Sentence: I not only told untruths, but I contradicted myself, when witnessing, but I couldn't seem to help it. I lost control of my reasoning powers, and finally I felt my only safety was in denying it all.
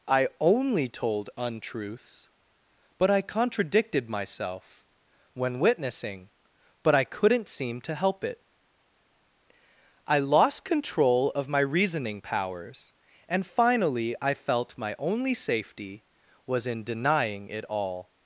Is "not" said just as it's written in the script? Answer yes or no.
no